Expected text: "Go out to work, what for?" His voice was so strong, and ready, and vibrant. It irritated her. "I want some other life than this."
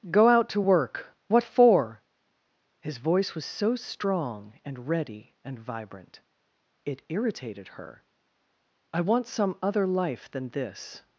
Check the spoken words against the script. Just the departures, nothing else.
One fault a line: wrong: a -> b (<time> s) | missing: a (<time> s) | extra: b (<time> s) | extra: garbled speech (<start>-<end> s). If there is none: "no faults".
no faults